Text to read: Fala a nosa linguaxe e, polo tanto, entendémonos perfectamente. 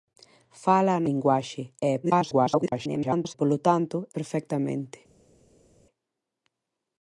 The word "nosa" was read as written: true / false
false